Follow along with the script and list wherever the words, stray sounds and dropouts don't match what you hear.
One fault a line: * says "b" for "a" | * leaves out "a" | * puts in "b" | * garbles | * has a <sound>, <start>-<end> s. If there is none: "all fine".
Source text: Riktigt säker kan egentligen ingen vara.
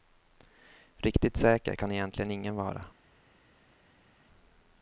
all fine